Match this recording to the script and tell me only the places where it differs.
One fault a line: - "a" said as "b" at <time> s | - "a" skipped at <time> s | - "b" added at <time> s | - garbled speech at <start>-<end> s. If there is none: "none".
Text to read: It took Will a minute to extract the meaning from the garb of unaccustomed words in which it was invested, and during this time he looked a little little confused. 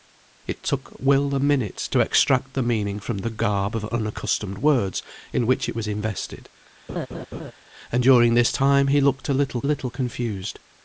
none